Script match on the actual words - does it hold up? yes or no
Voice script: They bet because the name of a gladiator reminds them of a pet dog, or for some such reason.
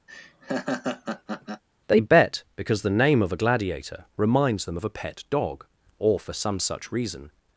yes